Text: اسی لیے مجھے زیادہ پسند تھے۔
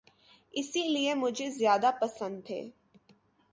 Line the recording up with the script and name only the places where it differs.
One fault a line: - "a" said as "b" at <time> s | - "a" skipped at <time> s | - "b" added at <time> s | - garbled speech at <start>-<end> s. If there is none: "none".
none